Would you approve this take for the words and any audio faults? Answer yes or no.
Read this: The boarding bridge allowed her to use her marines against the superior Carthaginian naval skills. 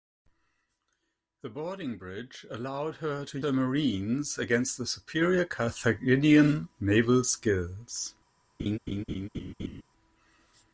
no